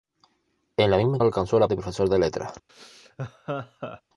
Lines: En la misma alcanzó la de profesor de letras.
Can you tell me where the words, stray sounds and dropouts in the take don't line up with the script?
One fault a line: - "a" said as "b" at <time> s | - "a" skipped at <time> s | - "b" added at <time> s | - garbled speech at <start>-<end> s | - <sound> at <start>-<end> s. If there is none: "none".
- laugh at 2.7-4.0 s